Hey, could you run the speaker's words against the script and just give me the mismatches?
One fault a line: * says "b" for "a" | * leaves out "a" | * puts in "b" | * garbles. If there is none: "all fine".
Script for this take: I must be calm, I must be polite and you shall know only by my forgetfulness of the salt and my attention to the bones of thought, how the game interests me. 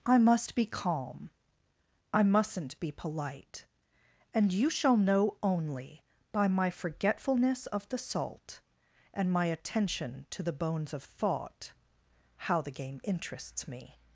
* says "mustn't" for "must"